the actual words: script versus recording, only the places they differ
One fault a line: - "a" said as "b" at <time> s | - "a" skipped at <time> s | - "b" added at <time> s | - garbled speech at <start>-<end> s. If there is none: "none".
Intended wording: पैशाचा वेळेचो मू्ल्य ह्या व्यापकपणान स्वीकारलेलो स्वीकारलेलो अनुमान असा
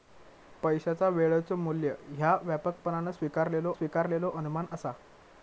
none